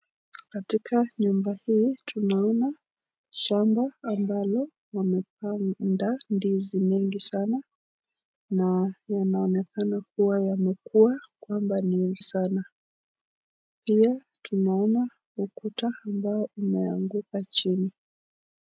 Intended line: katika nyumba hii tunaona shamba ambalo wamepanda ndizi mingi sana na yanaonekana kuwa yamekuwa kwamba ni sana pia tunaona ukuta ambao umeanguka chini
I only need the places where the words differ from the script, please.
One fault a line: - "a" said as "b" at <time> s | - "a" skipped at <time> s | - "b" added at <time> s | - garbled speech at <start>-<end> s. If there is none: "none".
none